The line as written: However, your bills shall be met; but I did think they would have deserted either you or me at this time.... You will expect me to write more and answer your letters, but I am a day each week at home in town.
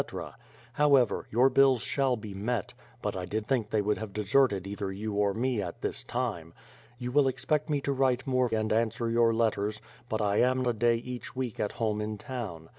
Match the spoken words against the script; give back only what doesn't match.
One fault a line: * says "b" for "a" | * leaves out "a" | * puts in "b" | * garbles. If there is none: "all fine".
all fine